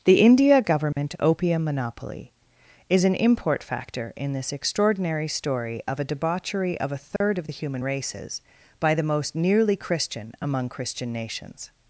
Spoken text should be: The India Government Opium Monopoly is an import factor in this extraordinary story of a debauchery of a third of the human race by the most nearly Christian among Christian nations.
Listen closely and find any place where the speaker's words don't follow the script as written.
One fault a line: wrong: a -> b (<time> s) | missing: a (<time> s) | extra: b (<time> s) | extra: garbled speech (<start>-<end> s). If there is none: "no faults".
wrong: race -> races (7.8 s)